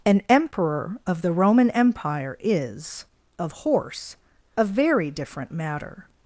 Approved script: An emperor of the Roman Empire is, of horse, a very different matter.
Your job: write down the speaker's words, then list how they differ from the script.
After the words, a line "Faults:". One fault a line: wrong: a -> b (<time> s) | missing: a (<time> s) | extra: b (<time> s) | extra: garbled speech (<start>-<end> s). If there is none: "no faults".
An emperor of the Roman Empire is, of horse, a very different matter.
Faults:
no faults